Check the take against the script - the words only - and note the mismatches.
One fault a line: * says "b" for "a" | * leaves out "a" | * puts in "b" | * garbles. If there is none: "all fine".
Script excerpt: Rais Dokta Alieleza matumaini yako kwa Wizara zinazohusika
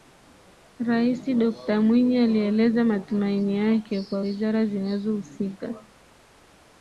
* puts in "Mwinyi"
* says "yake" for "yako"